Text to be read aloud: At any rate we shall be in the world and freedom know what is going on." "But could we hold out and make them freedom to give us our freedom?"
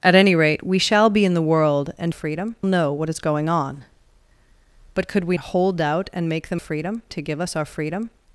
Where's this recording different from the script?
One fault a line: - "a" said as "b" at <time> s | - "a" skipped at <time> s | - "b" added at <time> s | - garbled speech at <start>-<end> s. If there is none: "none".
none